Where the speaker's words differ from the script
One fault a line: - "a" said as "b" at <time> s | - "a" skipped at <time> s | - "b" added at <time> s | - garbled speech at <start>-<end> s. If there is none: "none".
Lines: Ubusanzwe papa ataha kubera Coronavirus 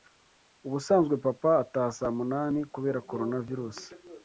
- "saa munani" added at 2.0 s